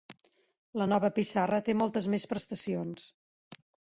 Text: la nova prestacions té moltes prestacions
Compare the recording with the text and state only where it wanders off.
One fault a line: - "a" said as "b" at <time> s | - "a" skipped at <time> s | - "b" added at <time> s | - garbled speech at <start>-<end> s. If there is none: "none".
- "prestacions" said as "pissarra" at 1.2 s
- "més" added at 2.2 s